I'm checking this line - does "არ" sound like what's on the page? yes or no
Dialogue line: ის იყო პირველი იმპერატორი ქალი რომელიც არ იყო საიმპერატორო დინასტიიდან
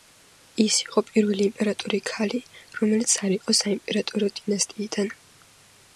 yes